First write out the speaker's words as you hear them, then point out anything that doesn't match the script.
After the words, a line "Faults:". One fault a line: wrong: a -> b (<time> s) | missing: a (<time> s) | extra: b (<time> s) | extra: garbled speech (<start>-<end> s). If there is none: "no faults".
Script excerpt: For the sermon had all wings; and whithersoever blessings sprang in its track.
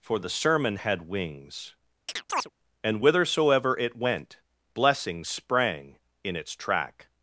For the sermon had wings; and whithersoever it went blessings sprang in its track.
Faults:
missing: all (1.1 s)
extra: it went (3.8 s)